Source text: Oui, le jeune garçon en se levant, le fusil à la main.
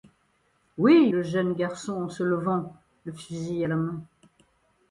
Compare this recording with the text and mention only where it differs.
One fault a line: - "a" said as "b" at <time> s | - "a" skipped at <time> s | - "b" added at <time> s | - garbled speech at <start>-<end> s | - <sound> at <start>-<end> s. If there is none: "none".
none